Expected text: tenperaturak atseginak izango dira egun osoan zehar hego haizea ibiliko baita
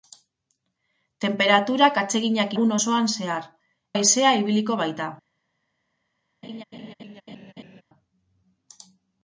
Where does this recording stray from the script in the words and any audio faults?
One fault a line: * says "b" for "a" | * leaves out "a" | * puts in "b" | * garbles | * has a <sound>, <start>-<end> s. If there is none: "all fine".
* leaves out "izango dira"
* leaves out "hego"
* has a laugh, 6.4-7.8 s